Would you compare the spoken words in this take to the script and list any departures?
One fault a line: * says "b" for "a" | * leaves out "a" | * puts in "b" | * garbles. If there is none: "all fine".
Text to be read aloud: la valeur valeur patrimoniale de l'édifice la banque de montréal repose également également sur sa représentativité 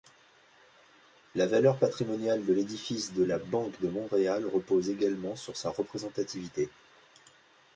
* leaves out "valeur"
* puts in "de"
* leaves out "également"